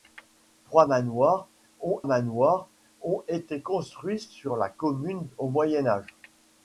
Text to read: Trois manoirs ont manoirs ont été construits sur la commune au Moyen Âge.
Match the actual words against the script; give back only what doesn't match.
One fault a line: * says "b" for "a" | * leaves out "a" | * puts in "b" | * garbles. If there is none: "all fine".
all fine